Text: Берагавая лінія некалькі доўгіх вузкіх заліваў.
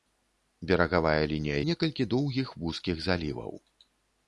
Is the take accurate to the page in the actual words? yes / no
yes